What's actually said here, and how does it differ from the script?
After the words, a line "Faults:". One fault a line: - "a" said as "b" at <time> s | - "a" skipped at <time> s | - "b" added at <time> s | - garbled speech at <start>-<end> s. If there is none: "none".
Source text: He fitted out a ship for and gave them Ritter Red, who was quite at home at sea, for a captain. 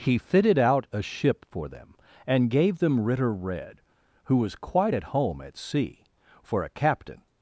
He fitted out a ship for them, and gave them Ritter Red, who was quite at home at sea, for a captain.
Faults:
- "them" added at 1.7 s